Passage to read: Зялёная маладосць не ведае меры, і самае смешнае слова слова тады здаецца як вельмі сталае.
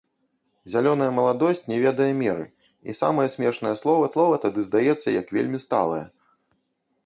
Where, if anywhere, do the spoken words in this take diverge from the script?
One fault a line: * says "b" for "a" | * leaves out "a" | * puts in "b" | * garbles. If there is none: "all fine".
all fine